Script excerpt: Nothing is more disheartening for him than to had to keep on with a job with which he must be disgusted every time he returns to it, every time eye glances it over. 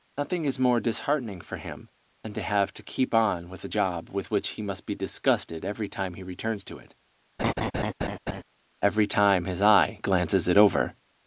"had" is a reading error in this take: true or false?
true